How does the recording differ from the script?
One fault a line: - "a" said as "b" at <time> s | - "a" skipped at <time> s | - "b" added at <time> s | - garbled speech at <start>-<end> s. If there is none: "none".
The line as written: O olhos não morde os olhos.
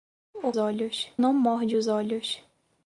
none